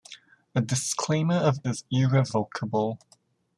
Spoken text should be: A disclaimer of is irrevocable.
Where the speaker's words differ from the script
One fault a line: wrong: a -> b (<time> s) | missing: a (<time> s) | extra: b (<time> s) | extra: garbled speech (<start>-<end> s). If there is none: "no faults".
no faults